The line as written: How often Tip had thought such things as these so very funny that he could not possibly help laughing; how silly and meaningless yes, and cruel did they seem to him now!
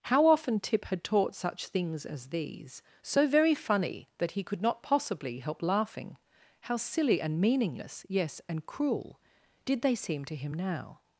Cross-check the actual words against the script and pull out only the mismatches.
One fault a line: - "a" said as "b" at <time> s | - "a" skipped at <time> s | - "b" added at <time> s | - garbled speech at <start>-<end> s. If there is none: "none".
- "thought" said as "taught" at 1.0 s